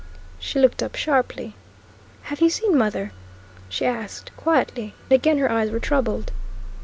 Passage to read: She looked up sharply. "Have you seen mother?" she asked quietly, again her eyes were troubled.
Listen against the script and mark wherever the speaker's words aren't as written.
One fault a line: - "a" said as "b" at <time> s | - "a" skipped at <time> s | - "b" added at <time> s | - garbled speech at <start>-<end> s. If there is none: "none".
none